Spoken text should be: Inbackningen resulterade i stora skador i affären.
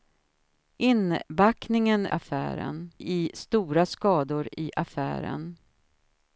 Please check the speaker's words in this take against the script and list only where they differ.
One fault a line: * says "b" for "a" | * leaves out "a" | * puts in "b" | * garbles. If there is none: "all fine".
* says "affären" for "resulterade"